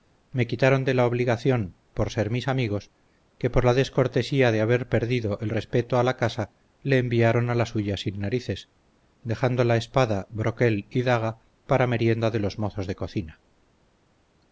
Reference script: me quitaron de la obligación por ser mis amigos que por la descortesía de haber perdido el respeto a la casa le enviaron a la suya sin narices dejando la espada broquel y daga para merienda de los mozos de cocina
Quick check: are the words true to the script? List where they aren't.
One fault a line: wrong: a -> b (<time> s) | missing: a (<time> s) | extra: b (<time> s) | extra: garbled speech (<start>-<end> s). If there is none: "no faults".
no faults